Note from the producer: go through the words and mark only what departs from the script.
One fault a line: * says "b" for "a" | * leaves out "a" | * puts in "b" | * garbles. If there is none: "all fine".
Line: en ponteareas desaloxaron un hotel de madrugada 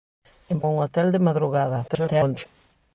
* leaves out "ponteareas desaloxaron"
* garbles